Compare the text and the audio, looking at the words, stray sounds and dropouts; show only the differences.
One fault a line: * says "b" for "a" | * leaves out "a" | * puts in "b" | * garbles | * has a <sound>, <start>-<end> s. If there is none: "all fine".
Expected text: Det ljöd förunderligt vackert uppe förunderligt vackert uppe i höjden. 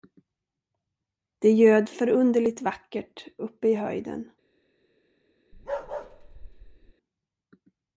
* leaves out "förunderligt vackert uppe"
* has a bark, 5.5-6.9 s